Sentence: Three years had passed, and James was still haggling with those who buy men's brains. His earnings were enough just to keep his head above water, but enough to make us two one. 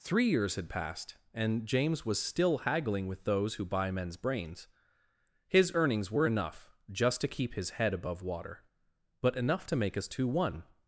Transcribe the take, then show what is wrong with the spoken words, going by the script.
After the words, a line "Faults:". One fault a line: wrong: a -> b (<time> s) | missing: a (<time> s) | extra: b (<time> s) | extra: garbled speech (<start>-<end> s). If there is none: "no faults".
Three years had passed, and James was still haggling with those who buy men's brains. His earnings were enough just to keep his head above water, but enough to make us two one.
Faults:
no faults